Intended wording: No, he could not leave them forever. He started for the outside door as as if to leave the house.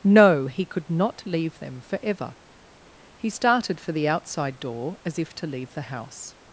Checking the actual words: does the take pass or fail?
fail